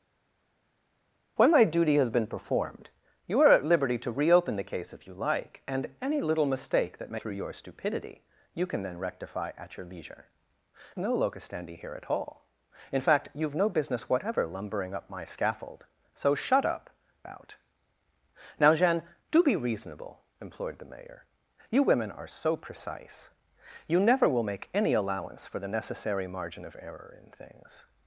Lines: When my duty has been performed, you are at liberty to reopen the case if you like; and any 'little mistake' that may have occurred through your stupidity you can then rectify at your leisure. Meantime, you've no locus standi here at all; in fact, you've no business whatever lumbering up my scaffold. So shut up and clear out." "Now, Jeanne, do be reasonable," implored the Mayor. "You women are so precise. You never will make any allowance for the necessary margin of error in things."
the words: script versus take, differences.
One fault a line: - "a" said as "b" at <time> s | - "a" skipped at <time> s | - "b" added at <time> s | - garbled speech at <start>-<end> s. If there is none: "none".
- "have occurred" skipped at 7.2 s
- "Meantime you've" skipped at 10.3 s
- "and clear" skipped at 16.9 s